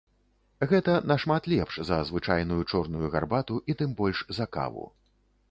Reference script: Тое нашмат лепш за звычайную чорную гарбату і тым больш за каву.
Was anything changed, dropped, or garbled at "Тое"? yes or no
yes